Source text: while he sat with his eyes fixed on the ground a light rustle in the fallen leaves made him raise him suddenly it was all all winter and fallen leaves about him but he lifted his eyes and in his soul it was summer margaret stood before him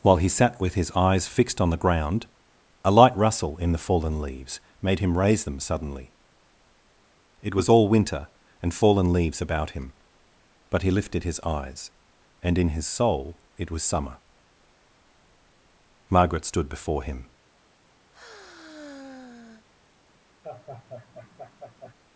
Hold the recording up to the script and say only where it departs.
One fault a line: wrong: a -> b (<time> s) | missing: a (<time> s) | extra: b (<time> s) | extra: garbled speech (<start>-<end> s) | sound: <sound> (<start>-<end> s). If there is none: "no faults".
wrong: him -> them (5.4 s)
missing: all (7.9 s)
sound: sigh (18.1-19.7 s)
sound: laugh (20.4-21.9 s)